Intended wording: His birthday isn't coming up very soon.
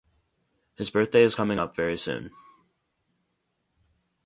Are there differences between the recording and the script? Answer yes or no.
yes